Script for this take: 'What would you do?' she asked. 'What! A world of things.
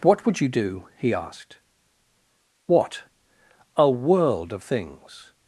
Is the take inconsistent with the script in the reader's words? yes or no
yes